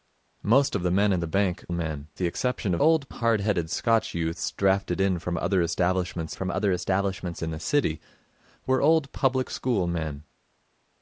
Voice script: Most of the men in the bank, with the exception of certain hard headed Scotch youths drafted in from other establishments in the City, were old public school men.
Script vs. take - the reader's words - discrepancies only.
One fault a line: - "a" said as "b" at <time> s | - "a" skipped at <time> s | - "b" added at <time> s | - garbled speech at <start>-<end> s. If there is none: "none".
- "with" said as "men" at 1.7 s
- "certain" said as "old" at 2.8 s
- "from other establishments" added at 6.3 s